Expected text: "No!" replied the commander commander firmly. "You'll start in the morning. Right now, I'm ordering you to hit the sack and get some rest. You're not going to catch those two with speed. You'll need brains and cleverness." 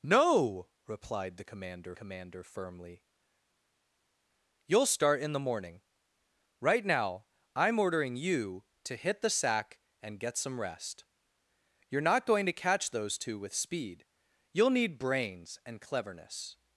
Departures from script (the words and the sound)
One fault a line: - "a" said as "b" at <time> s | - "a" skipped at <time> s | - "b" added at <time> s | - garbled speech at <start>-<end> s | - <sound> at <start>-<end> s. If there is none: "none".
none